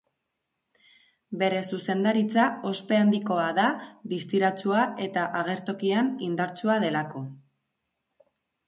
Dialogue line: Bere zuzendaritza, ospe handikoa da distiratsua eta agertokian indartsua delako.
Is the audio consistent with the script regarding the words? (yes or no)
yes